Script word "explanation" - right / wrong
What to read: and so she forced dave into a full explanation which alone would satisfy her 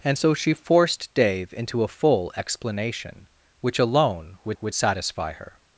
right